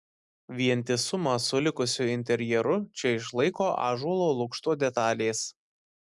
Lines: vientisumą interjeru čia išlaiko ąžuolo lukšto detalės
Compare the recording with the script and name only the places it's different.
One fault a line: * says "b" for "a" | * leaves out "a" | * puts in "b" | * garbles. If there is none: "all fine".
* puts in "su likusiu"